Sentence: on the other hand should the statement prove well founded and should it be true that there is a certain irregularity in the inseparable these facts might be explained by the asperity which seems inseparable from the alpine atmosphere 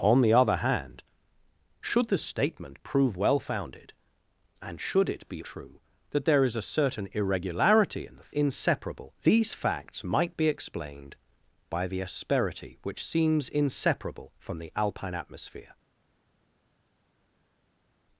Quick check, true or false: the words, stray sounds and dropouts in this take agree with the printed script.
true